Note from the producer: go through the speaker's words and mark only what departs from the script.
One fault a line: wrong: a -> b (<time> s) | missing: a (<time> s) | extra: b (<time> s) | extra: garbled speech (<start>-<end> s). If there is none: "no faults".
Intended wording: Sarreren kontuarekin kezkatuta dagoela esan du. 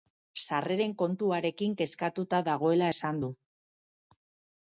no faults